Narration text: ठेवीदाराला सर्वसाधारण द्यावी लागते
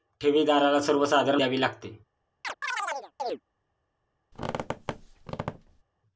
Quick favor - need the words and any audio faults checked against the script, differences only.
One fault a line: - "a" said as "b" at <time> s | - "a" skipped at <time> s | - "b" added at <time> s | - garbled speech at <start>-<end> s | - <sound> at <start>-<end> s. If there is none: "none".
- chirp at 2.4-3.4 s
- squeak at 4.3-5.8 s